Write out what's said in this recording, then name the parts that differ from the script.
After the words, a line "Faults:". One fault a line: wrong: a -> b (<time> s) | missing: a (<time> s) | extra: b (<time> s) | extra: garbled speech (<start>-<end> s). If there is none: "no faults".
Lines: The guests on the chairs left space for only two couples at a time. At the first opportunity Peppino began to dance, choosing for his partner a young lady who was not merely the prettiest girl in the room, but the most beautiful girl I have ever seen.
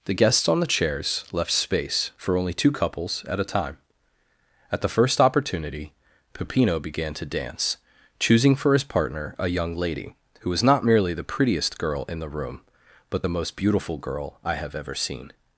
The guests on the chairs left space for only two couples at a time. At the first opportunity Peppino began to dance, choosing for his partner a young lady who was not merely the prettiest girl in the room, but the most beautiful girl I have ever seen.
Faults:
no faults